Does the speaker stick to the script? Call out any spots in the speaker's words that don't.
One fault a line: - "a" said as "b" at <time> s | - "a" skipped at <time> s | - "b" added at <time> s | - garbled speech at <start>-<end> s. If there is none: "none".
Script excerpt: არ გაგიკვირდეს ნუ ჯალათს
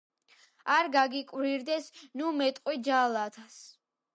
- "მეტყვი" added at 2.4 s